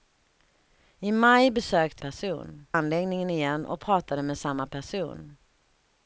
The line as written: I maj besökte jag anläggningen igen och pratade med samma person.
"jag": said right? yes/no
no